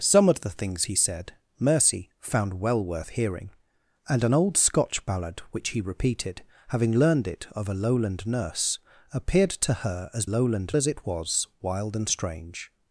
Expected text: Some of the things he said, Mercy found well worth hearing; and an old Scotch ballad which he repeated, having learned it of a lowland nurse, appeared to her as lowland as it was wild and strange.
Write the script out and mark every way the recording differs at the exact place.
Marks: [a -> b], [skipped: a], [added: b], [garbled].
Some of the things he said, Mercy found well worth hearing; and an old Scotch ballad which he repeated, having learned it of a lowland nurse, appeared to her as lowland as it was wild and strange.